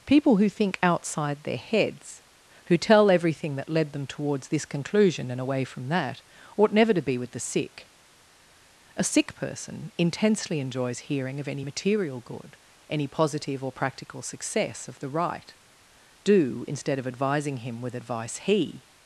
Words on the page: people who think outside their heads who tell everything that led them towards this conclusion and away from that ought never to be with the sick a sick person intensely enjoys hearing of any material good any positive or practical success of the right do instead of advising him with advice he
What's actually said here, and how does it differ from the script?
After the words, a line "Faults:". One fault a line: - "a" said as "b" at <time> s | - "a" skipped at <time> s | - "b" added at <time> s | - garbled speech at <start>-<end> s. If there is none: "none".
people who think outside their heads who tell everything that led them towards this conclusion and away from that ought never to be with the sick a sick person intensely enjoys hearing of any material good any positive or practical success of the right do instead of advising him with advice he
Faults:
none